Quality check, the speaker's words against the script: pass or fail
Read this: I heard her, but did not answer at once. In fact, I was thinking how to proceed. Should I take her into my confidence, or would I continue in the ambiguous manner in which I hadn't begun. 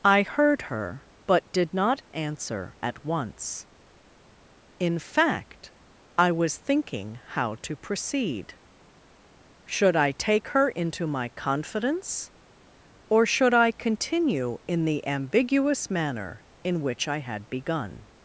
fail